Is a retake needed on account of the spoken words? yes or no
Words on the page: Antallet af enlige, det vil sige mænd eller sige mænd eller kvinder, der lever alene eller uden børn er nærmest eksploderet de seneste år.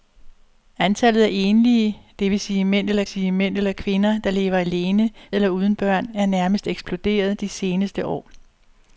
no